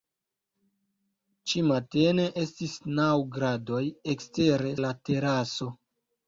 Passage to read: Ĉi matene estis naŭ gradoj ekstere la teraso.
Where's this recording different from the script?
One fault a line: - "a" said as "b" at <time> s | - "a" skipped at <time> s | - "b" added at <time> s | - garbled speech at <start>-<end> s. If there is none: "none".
none